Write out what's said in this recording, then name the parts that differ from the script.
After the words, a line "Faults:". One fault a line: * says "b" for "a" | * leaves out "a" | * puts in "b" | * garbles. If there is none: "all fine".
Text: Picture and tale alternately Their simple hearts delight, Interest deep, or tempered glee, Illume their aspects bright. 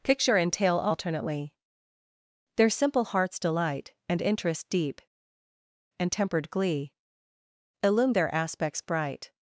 Picture and tale alternately Their simple hearts delight, And interest deep, and tempered glee, Illume their aspects bright.
Faults:
* puts in "And"
* says "and" for "or"